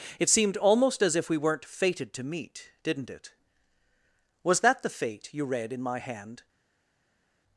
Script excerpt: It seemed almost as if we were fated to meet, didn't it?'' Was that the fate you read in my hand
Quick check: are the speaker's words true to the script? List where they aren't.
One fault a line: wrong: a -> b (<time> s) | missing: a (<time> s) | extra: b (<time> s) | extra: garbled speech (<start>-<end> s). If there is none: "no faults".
wrong: were -> weren't (1.4 s)